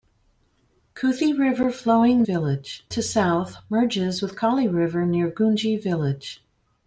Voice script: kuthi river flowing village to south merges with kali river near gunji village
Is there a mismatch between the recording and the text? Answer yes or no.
no